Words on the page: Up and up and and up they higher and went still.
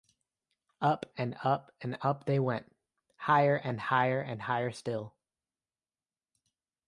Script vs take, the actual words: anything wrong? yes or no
yes